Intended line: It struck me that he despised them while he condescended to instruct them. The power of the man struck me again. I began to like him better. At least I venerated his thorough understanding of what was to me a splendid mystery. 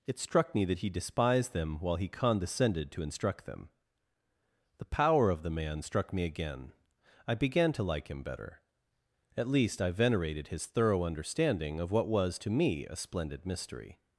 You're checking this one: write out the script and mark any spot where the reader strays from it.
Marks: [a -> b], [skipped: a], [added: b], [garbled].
It struck me that he despised them while he condescended to instruct them. The power of the man struck me again. I began to like him better. At least I venerated his thorough understanding of what was to me a splendid mystery.